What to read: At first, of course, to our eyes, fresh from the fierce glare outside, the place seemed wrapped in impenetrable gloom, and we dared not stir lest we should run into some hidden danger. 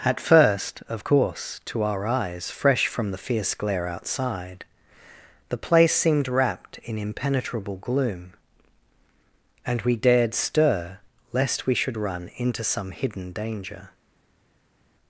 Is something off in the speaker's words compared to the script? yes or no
yes